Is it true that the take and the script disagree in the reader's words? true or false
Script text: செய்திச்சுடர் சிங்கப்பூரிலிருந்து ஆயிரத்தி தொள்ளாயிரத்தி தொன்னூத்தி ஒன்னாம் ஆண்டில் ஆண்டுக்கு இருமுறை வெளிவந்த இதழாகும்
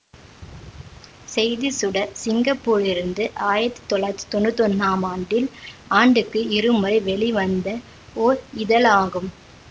true